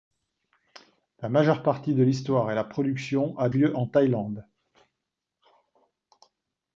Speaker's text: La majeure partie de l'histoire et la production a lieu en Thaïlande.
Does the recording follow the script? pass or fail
pass